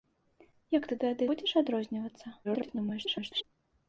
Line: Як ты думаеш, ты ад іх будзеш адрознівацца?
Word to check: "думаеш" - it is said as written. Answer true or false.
false